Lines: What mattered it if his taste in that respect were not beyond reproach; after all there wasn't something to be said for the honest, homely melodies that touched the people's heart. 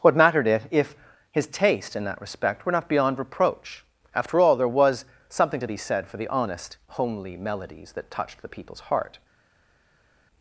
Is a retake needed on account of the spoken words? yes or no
yes